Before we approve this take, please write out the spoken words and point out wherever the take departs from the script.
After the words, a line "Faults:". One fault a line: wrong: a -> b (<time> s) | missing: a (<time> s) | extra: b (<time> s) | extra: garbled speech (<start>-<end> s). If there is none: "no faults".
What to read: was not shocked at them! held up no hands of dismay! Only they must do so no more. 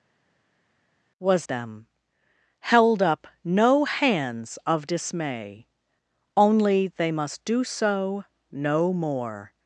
was them! held up no hands of dismay! Only they must do so no more.
Faults:
missing: not shocked at (1.5 s)